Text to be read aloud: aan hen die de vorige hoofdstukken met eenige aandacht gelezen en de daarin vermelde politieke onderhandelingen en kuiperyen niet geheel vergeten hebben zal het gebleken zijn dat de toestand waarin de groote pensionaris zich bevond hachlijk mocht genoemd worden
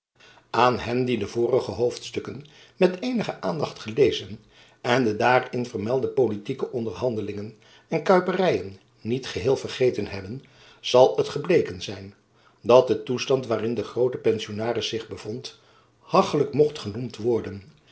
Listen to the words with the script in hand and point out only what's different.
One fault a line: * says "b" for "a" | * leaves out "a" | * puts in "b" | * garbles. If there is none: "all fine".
all fine